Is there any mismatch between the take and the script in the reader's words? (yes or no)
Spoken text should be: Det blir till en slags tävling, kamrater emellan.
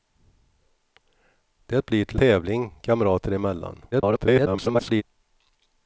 yes